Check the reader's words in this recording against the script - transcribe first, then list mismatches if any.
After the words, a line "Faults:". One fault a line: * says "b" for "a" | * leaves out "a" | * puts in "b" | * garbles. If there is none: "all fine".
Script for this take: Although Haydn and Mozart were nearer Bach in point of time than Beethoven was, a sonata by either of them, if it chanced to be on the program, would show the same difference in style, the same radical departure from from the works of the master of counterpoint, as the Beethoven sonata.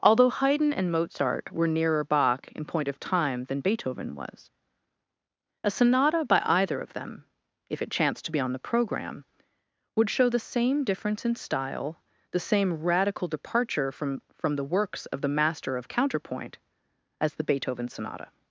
Although Haydn and Mozart were nearer Bach in point of time than Beethoven was, a sonata by either of them, if it chanced to be on the program, would show the same difference in style, the same radical departure from from the works of the master of counterpoint, as the Beethoven sonata.
Faults:
all fine